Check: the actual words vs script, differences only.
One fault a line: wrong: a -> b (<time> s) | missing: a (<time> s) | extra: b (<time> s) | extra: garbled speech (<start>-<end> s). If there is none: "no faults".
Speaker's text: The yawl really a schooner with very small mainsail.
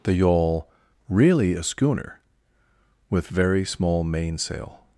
no faults